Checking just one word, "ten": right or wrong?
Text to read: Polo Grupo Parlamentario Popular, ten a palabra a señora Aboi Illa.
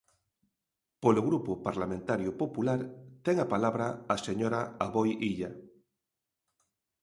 right